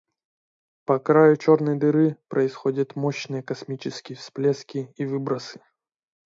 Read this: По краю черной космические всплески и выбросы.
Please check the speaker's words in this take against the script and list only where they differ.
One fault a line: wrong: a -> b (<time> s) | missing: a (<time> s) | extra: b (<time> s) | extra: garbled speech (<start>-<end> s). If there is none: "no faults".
extra: дыры происходят мощные (1.8 s)